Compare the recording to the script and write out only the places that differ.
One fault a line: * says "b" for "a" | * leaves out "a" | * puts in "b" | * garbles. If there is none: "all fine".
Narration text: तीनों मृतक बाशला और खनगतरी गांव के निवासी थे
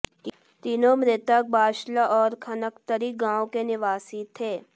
all fine